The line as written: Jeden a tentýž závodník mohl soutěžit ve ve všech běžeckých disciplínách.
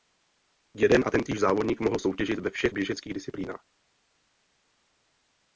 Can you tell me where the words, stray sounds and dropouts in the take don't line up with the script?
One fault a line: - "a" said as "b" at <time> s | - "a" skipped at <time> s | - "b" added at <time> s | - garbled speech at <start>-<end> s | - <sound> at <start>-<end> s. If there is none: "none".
- "ve" skipped at 2.5 s